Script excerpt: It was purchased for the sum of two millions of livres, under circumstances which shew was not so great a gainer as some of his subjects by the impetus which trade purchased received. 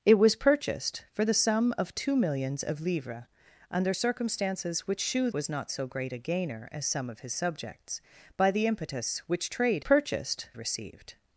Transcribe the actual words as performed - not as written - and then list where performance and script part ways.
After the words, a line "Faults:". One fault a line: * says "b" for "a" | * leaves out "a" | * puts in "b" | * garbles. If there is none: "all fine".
It was purchased for the sum of two millions of livres, under circumstances which shew was not so great a gainer as some of his subjects by the impetus which trade purchased received.
Faults:
all fine